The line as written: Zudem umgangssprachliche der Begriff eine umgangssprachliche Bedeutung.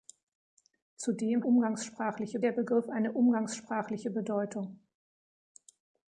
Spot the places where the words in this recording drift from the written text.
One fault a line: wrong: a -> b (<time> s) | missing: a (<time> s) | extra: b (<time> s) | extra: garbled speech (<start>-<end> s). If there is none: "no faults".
no faults